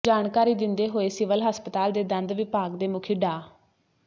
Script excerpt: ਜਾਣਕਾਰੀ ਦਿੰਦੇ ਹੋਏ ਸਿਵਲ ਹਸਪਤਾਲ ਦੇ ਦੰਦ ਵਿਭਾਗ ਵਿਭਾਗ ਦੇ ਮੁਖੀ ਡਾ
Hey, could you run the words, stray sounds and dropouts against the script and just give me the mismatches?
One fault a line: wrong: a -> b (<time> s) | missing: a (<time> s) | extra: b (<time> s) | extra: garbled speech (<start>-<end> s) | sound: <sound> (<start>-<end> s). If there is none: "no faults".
missing: ਵਿਭਾਗ (2.8 s)